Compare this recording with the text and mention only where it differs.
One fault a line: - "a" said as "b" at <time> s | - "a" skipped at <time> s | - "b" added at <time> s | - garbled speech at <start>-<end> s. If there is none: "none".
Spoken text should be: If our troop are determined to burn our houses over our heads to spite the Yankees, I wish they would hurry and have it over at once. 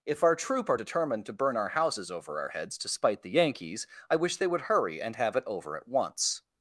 none